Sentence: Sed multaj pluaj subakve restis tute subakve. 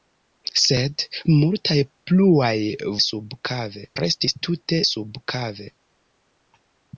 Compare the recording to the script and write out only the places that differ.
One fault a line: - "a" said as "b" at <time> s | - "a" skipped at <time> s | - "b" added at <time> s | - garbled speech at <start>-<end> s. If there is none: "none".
none